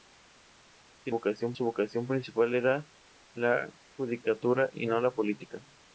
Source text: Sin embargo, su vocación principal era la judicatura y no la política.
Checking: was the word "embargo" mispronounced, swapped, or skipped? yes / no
yes